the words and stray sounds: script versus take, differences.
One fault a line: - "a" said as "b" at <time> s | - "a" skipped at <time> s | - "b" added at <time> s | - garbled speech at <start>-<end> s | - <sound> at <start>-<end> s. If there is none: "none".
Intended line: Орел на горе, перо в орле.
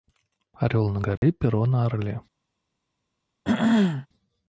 - dropout at 1.2-1.2 s
- "в" said as "на" at 1.7 s
- throat clearing at 3.4-4.1 s